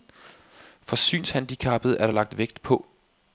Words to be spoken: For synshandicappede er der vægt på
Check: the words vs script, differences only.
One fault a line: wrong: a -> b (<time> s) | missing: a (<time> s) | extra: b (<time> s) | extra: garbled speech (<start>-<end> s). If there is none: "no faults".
extra: lagt (2.1 s)